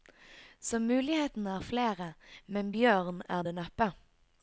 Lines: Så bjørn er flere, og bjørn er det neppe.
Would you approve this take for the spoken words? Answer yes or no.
no